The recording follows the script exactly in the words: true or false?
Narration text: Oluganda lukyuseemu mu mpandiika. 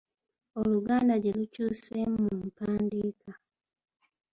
false